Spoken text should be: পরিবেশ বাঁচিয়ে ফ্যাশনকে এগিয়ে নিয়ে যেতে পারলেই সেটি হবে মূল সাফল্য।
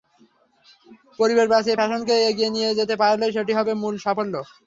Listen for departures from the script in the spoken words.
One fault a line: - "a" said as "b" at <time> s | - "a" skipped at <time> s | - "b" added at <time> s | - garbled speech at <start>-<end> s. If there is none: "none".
none